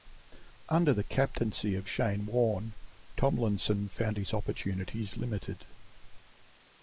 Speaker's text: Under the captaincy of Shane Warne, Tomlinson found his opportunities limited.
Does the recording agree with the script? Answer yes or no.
yes